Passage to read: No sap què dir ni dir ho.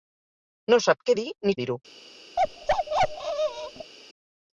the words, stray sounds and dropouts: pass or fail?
fail